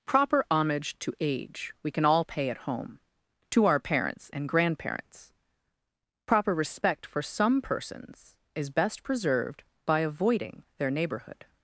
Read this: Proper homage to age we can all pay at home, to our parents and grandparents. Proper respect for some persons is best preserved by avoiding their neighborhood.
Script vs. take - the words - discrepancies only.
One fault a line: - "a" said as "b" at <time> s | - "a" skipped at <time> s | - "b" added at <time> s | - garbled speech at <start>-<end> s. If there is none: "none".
none